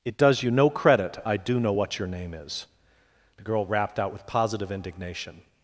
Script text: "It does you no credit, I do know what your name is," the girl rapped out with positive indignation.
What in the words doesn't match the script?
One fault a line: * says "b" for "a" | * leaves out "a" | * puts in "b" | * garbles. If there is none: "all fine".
all fine